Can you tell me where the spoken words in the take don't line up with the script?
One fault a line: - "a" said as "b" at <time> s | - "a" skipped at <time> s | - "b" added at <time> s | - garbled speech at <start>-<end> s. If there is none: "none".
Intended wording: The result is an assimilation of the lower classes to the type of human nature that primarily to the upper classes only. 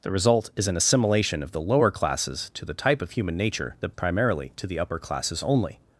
none